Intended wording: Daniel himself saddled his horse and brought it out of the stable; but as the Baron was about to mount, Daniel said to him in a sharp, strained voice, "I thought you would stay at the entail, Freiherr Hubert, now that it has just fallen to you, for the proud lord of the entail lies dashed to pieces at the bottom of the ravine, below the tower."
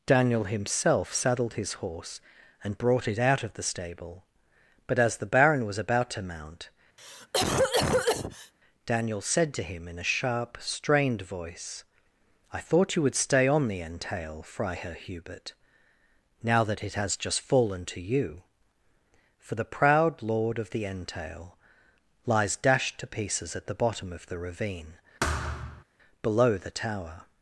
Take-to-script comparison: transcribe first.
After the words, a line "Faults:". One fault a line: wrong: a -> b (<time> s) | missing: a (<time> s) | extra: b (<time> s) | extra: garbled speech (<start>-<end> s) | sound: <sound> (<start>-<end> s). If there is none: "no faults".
Daniel himself saddled his horse and brought it out of the stable; but as the Baron was about to mount, Daniel said to him in a sharp, strained voice, "I thought you would stay on the entail, Freiherr Hubert, now that it has just fallen to you, for the proud lord of the entail lies dashed to pieces at the bottom of the ravine, below the tower."
Faults:
sound: cough (7.0-8.5 s)
wrong: at -> on (13.5 s)
sound: thud (25.2-25.8 s)